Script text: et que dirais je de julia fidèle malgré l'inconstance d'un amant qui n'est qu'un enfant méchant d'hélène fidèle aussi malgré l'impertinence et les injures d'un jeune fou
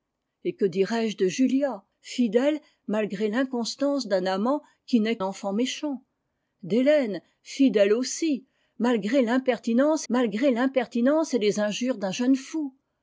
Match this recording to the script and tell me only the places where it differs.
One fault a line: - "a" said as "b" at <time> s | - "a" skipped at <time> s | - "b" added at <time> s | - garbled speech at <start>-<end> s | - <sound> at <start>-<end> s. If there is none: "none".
- "qu'un" skipped at 5.2 s
- "malgré l'impertinence" added at 10.1 s